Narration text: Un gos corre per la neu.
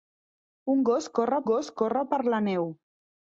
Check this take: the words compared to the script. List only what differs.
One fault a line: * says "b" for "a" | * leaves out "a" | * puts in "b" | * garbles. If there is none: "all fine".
* puts in "gos corre"